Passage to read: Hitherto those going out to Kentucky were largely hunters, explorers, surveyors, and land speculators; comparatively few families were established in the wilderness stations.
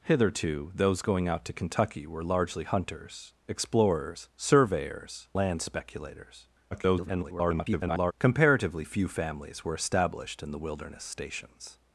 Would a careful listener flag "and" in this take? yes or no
yes